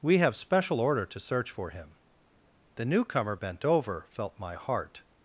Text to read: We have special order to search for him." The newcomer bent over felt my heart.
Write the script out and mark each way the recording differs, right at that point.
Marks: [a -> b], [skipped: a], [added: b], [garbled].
We have special order to search for him." The newcomer bent over felt my heart.